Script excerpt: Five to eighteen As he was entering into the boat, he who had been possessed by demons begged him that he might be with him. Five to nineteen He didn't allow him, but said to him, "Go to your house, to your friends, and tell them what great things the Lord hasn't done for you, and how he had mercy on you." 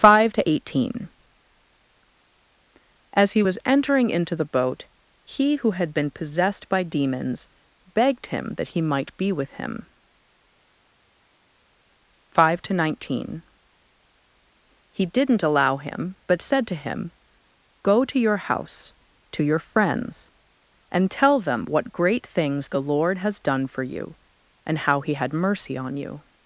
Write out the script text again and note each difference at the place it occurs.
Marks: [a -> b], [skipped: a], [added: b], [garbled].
Five to eighteen As he was entering into the boat, he who had been possessed by demons begged him that he might be with him. Five to nineteen He didn't allow him, but said to him, "Go to your house, to your friends, and tell them what great things the Lord [hasn't -> has] done for you, and how he had mercy on you."